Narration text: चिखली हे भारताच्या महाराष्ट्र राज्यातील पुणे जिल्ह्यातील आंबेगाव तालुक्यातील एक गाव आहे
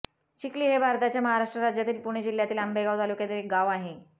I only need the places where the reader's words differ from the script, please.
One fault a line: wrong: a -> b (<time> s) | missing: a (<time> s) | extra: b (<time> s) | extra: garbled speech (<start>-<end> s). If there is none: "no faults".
no faults